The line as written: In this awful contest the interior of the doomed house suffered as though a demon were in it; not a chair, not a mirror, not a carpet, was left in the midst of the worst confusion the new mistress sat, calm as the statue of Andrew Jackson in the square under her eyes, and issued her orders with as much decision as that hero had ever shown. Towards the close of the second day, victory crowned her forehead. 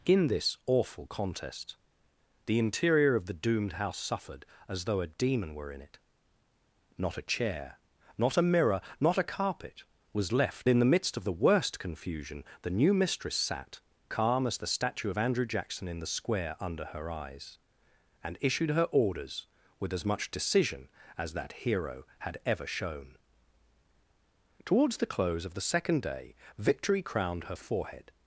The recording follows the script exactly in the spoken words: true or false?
true